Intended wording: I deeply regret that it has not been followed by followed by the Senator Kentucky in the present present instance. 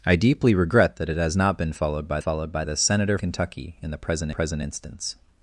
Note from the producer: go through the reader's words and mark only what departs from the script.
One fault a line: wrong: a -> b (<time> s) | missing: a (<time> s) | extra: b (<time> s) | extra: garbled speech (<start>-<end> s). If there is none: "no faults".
no faults